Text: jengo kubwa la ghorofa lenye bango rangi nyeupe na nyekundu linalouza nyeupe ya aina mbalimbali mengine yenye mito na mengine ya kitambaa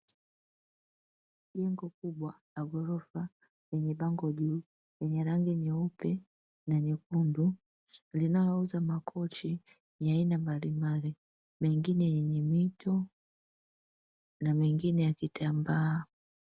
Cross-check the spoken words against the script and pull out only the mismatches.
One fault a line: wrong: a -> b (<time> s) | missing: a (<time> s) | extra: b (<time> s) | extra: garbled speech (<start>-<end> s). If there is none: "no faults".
extra: juu lenye (4.3 s)
wrong: nyeupe -> makochi (8.8 s)